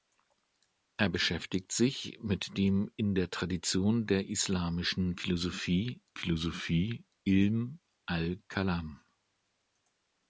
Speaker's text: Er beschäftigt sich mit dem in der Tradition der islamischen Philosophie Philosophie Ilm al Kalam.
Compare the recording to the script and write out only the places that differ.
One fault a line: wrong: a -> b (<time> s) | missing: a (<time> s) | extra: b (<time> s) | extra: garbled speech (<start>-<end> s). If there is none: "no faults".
no faults